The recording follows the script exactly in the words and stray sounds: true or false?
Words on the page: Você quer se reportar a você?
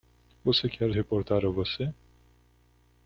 false